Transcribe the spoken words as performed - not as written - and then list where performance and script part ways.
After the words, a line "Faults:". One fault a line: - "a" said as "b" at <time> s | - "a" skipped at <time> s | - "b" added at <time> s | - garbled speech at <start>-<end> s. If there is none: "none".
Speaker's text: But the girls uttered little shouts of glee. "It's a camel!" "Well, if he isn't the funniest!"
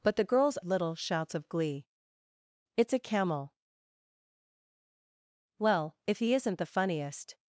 But the girls little shouts of glee. "It's a camel!" "Well, if he isn't the funniest!"
Faults:
- "uttered" skipped at 0.6 s